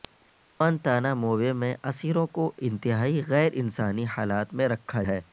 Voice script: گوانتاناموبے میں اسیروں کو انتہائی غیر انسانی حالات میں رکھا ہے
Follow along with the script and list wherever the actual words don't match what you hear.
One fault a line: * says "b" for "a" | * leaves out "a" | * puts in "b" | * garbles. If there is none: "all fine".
all fine